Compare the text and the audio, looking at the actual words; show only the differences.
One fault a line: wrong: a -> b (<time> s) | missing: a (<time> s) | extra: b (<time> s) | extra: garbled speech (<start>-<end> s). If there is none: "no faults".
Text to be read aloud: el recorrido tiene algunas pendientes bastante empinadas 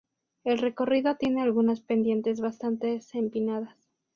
no faults